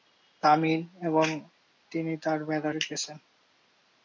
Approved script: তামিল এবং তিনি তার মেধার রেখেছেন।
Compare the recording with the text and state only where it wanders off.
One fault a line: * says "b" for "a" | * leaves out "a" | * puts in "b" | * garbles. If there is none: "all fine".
all fine